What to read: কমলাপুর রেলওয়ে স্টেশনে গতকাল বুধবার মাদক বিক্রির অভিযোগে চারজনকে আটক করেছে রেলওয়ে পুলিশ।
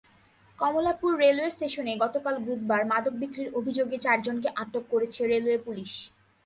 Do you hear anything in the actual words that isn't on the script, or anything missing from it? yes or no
no